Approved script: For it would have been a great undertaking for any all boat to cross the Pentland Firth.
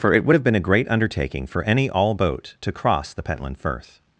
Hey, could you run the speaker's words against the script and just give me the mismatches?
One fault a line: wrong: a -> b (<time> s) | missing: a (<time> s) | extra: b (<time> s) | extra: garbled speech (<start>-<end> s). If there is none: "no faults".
no faults